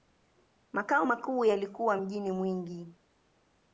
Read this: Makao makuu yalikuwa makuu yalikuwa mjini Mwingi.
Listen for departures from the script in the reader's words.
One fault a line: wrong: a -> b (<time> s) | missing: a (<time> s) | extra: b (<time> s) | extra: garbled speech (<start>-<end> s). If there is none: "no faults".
missing: makuu yalikuwa (2.0 s)